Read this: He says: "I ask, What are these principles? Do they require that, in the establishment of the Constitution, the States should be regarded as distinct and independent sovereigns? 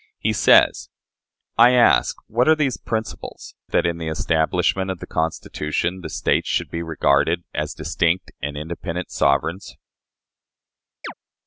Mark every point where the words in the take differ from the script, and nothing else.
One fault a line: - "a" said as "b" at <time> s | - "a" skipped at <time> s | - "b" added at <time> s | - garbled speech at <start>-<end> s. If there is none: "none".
- "Do they require" skipped at 3.5 s